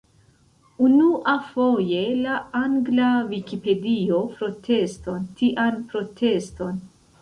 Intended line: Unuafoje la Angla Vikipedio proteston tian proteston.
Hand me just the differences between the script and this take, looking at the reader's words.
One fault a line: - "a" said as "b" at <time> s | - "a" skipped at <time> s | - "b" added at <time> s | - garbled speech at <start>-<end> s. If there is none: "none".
none